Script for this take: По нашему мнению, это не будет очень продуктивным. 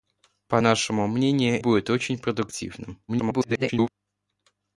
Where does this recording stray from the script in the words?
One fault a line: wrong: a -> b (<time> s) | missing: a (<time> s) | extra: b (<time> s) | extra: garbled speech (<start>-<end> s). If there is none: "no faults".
missing: это не (1.6 s)
extra: garbled speech (3.1-3.9 s)